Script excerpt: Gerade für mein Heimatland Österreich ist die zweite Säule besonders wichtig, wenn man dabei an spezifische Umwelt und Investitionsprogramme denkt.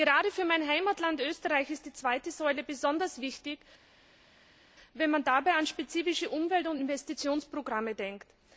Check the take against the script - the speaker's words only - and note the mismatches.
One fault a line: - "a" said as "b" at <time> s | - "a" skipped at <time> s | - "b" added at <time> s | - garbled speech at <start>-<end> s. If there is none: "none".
none